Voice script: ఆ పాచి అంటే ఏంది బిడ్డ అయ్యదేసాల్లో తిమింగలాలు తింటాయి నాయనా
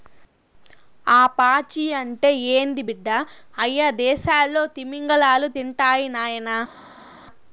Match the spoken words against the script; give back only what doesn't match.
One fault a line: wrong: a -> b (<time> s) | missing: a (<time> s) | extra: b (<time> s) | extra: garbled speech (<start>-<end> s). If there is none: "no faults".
no faults